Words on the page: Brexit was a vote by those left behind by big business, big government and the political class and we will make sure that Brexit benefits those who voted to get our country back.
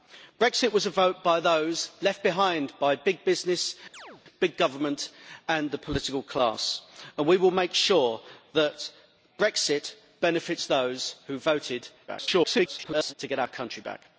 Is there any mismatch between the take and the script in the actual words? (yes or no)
yes